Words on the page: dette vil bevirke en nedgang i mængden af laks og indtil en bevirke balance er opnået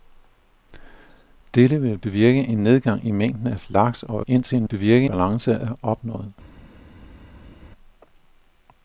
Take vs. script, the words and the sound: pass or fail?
pass